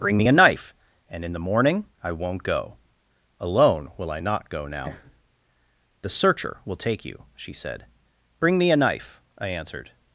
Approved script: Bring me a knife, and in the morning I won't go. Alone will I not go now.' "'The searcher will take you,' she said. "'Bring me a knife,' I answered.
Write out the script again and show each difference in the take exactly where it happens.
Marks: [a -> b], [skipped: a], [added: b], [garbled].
Bring me a knife, and in the morning I won't go. Alone will I not go now.' "'The searcher will take you,' she said. "'Bring me a knife,' I answered.